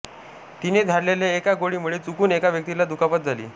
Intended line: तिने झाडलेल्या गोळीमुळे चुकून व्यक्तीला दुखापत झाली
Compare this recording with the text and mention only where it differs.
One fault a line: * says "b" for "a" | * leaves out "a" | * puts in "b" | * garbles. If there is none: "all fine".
* puts in "एका"
* puts in "एका"